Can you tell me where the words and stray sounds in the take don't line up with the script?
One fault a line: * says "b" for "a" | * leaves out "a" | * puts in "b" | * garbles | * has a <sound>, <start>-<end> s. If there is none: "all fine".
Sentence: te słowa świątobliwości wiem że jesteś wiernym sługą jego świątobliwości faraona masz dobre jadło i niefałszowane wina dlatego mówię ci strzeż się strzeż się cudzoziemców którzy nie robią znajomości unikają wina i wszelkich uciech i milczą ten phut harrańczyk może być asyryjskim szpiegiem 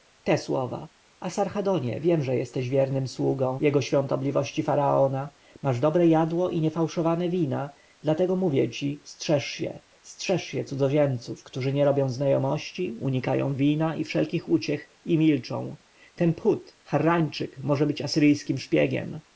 * says "asarhadonie" for "świątobliwości"